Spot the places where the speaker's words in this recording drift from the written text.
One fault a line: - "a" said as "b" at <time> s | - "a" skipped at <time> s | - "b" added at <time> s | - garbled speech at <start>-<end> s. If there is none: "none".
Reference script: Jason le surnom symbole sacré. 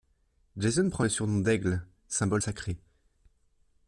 - "prend" added at 0.9 s
- "d'Aigle" added at 1.4 s